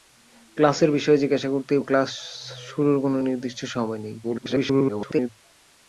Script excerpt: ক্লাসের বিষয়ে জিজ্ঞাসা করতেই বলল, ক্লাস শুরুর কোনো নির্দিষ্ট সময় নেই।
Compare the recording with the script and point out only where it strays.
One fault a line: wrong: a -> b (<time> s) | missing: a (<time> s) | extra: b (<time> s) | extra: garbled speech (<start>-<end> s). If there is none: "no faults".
missing: বলল (1.8 s)
extra: garbled speech (4.2-5.3 s)